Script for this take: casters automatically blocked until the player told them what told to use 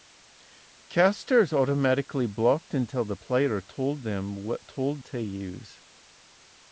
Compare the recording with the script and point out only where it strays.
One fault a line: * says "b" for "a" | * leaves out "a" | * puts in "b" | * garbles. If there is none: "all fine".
all fine